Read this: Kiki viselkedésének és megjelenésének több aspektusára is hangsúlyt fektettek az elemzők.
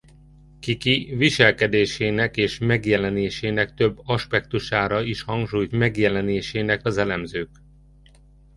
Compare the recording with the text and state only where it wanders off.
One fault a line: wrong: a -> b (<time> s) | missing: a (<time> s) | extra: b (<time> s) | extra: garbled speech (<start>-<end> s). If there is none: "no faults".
wrong: fektettek -> megjelenésének (5.7 s)